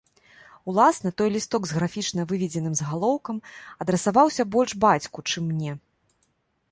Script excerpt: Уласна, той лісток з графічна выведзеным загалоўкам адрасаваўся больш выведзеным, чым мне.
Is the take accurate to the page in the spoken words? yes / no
no